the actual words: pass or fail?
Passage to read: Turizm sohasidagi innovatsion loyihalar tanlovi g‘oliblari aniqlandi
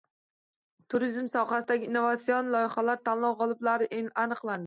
pass